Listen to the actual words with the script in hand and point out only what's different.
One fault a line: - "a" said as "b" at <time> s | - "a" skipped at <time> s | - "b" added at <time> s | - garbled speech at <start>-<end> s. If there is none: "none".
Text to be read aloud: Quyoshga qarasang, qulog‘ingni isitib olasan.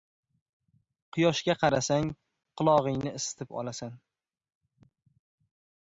none